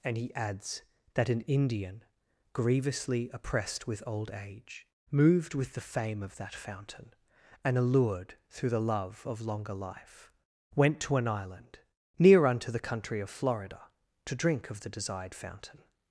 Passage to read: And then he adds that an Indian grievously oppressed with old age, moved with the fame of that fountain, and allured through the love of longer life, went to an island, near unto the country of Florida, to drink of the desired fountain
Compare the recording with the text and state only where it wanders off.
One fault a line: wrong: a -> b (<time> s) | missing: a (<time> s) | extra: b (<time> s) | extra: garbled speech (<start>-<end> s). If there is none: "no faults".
missing: then (0.2 s)